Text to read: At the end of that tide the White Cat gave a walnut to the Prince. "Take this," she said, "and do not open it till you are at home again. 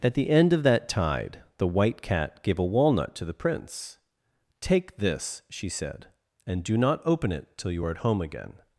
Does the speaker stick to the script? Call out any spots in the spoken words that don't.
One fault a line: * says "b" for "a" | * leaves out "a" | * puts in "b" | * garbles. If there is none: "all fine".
all fine